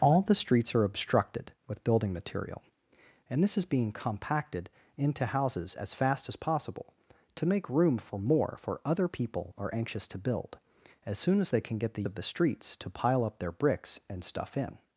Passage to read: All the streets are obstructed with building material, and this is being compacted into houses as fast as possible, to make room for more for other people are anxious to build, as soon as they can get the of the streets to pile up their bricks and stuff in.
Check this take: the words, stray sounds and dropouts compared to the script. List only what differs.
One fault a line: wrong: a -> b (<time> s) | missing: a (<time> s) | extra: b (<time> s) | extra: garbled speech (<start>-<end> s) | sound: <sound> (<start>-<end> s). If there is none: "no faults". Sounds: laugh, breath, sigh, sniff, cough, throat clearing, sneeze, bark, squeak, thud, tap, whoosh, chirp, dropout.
no faults